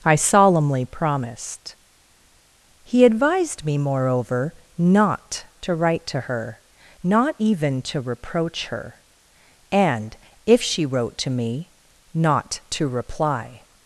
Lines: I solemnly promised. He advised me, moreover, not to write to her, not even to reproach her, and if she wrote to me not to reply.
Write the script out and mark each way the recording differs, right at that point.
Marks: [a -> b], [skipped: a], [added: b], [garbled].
I solemnly promised. He advised me, moreover, not to write to her, not even to reproach her, and if she wrote to me not to reply.